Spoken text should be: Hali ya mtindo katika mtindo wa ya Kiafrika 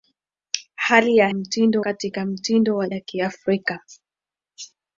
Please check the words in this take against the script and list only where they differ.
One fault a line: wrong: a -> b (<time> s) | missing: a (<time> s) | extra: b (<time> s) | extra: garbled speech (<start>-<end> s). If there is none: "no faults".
no faults